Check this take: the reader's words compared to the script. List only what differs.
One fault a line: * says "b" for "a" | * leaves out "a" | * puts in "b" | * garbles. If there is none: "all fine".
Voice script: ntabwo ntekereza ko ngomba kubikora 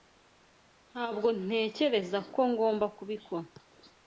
all fine